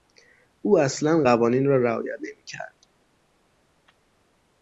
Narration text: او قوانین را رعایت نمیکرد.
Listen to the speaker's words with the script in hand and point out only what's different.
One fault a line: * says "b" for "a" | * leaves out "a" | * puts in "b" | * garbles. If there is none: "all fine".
* puts in "اصلا"